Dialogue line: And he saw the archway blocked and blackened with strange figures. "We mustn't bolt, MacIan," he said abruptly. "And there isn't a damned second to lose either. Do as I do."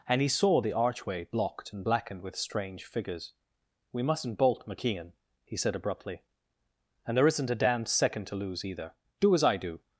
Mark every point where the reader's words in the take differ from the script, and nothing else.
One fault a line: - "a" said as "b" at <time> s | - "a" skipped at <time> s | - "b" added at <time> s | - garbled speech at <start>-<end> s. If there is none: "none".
none